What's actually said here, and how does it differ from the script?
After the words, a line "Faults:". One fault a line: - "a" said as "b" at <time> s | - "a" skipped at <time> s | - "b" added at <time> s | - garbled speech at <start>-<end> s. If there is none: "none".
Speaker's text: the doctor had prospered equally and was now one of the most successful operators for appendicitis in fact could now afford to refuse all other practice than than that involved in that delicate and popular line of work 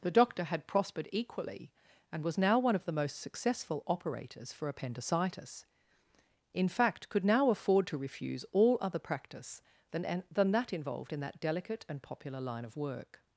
the doctor had prospered equally and was now one of the most successful operators for appendicitis in fact could now afford to refuse all other practice than than that involved in that delicate and popular line of work
Faults:
none